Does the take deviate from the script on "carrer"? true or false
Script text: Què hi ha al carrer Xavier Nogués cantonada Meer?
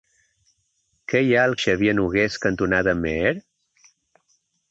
true